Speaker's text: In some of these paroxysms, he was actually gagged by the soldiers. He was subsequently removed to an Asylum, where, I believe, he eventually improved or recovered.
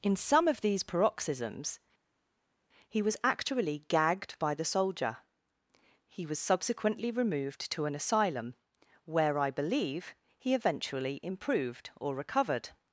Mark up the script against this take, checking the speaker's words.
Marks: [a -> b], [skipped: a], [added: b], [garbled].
In some of these paroxysms, he was actually gagged by the [soldiers. -> soldier] He was subsequently removed to an Asylum, where, I believe, he eventually improved or recovered.